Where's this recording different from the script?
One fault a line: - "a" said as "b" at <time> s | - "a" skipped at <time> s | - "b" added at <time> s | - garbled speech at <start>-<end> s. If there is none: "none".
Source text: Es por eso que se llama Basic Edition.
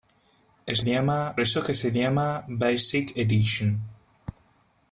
- "por" said as "llama" at 0.8 s